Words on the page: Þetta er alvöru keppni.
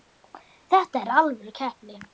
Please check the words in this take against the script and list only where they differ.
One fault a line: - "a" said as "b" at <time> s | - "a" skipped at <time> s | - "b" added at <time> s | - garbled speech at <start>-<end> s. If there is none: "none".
none